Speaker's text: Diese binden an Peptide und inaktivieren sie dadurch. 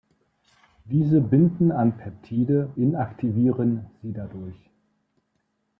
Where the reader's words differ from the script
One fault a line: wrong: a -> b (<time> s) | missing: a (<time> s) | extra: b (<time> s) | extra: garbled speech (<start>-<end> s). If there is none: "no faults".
missing: und (2.8 s)